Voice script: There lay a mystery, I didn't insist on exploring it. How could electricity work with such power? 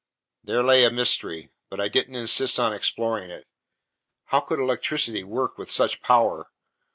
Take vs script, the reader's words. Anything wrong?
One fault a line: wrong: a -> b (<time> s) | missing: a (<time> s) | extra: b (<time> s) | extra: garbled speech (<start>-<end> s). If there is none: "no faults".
extra: but (1.7 s)